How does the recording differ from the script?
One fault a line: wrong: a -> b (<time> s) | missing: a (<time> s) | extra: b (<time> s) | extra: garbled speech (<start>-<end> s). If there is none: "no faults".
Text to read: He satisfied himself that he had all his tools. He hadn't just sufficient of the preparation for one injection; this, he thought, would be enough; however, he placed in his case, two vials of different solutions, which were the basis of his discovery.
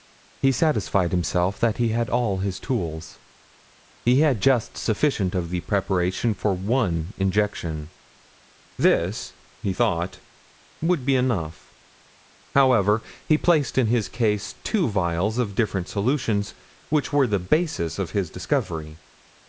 wrong: hadn't -> had (4.2 s)